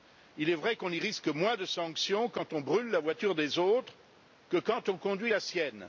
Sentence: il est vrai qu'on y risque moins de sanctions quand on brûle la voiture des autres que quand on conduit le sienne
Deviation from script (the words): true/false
true